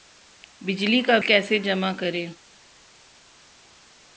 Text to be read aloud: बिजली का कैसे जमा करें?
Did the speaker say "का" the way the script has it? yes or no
yes